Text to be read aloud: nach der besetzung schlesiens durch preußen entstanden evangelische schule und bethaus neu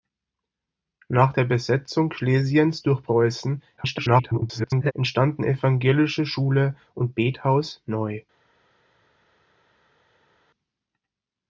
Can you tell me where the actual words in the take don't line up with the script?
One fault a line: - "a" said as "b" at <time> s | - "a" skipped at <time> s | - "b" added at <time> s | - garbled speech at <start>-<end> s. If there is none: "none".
- garbled speech at 3.8-4.9 s